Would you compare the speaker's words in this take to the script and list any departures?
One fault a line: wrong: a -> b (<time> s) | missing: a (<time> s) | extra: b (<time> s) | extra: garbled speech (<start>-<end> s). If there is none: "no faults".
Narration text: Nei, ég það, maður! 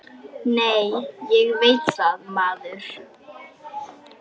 extra: veit (1.6 s)